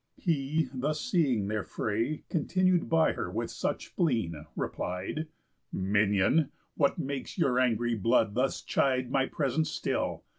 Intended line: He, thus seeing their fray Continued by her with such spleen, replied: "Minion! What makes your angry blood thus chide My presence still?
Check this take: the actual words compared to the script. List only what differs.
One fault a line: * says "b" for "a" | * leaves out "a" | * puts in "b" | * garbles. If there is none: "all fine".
all fine